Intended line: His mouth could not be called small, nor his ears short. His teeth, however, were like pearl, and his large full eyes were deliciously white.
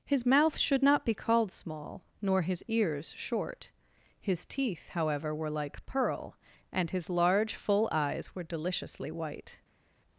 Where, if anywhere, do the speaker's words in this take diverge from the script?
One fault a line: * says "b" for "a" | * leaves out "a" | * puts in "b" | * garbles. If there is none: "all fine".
* says "should" for "could"